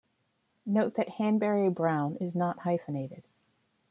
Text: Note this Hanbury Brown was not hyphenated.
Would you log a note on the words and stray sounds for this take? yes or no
yes